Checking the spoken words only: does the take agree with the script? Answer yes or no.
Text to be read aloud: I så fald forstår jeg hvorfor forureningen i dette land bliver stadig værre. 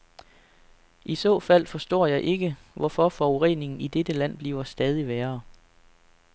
no